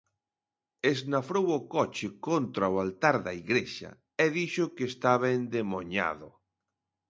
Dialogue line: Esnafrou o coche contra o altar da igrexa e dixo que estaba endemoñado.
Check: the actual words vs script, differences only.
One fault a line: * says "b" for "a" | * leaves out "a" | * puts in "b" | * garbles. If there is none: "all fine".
all fine